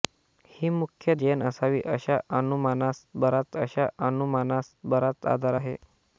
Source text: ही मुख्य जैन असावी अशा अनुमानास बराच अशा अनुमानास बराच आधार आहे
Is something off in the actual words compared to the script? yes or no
no